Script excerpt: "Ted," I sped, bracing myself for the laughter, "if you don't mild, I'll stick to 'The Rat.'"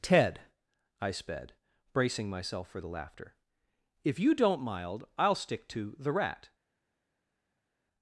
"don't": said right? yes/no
yes